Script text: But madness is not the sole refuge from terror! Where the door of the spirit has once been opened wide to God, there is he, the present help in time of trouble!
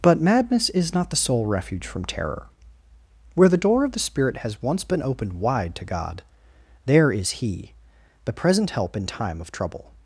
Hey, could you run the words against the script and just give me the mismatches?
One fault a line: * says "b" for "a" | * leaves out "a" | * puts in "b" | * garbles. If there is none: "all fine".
all fine